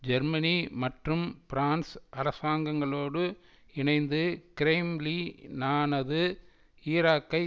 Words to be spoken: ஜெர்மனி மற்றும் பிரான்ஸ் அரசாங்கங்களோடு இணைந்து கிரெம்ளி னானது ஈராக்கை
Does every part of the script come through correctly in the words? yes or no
yes